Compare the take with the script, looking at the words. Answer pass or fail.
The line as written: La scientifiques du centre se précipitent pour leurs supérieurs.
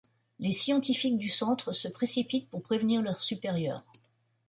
fail